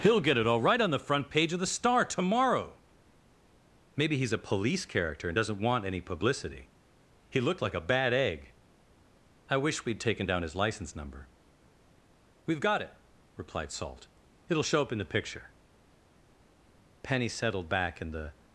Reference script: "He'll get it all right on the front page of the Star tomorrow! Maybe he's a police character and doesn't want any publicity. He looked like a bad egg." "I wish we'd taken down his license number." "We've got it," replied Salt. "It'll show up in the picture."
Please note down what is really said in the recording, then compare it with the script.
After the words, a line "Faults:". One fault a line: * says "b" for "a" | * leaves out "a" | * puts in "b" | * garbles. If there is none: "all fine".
"He'll get it all right on the front page of the Star tomorrow! Maybe he's a police character and doesn't want any publicity. He looked like a bad egg." "I wish we'd taken down his license number." "We've got it," replied Salt. "It'll show up in the picture." Penny settled back in the
Faults:
* puts in "Penny settled back in the"